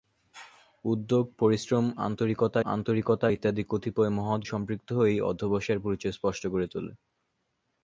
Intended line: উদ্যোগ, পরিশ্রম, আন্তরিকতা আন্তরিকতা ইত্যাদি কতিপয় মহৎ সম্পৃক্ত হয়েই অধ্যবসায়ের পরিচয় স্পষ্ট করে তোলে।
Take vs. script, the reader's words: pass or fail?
pass